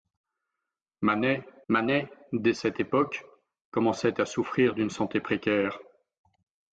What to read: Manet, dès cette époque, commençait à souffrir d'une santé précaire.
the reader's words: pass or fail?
fail